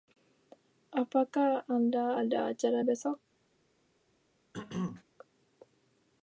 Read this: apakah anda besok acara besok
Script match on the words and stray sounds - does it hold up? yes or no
no